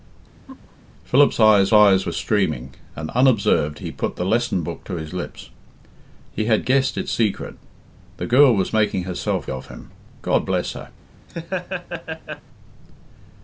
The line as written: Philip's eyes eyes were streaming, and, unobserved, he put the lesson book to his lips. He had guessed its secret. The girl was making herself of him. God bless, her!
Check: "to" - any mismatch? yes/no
no